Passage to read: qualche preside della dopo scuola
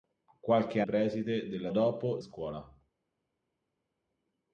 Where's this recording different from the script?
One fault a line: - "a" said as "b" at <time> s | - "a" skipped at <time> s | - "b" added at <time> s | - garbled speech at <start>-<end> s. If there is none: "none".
none